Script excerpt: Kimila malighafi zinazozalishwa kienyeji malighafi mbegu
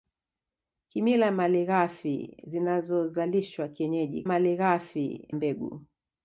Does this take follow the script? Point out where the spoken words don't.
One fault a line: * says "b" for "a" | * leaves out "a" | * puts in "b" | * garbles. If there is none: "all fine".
all fine